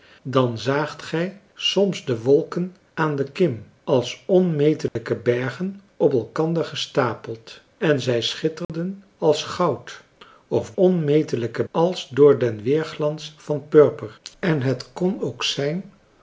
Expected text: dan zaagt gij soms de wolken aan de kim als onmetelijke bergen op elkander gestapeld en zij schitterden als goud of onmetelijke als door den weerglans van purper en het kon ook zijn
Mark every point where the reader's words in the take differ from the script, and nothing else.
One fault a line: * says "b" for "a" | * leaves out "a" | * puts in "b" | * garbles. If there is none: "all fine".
all fine